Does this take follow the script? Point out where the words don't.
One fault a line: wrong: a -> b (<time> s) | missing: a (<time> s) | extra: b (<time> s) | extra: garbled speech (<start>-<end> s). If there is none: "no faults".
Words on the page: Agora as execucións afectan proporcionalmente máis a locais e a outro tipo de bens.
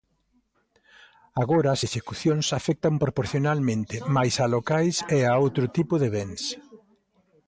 no faults